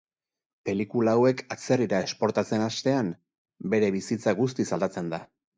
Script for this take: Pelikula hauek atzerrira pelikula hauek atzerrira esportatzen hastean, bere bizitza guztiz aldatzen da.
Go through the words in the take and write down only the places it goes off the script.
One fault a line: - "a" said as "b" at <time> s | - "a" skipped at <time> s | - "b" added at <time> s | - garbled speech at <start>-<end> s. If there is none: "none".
- "pelikula hauek atzerrira" skipped at 2.0 s